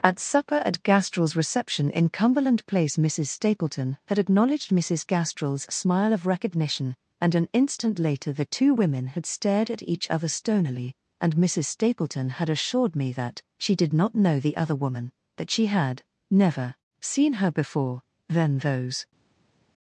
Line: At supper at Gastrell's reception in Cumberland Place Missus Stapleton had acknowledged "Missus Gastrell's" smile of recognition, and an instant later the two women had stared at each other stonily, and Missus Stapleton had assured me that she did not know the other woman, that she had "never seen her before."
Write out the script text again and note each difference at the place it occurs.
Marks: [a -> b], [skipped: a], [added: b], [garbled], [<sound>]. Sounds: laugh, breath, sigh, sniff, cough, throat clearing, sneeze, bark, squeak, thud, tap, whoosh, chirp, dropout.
At supper at Gastrell's reception in Cumberland Place Missus Stapleton had acknowledged "Missus Gastrell's" smile of recognition, and an instant later the two women had stared at each other stonily, and Missus Stapleton had assured me that she did not know the other woman, that she had "never seen her before." [added: Then those]